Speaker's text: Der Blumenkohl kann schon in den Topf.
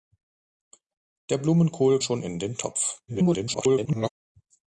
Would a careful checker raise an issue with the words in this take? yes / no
yes